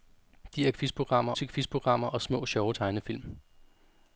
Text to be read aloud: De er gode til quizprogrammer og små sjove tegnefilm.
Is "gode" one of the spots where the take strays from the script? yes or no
yes